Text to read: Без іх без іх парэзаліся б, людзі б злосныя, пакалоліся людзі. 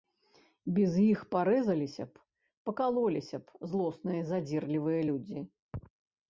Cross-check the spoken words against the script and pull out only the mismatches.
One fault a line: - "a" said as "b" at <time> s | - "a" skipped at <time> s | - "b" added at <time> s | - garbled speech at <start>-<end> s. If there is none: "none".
- "без іх" skipped at 1.2 s
- "людзі" said as "пакалоліся" at 2.7 s
- "пакалоліся" said as "задзірлівыя" at 4.3 s